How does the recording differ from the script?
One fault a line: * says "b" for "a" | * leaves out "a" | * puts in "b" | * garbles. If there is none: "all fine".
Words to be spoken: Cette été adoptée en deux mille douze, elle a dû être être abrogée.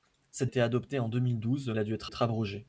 all fine